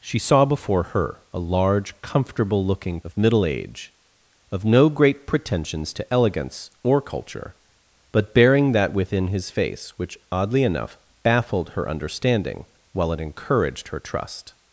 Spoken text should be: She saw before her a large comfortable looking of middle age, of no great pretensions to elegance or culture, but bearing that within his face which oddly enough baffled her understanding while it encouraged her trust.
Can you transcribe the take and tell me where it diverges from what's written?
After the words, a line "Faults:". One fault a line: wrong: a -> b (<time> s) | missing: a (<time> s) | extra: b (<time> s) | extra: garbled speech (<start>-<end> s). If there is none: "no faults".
She saw before her a large comfortable looking of middle age, of no great pretensions to elegance or culture, but bearing that within his face which oddly enough baffled her understanding while it encouraged her trust.
Faults:
no faults